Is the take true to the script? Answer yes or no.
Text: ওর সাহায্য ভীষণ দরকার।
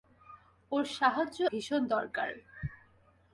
yes